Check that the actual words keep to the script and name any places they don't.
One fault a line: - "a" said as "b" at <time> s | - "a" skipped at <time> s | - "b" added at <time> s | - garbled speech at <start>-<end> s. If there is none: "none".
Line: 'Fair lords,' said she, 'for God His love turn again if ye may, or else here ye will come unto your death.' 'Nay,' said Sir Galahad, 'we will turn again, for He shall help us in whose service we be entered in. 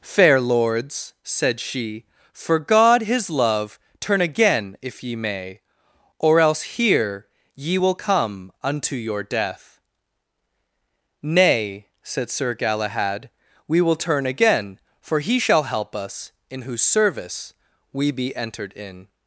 none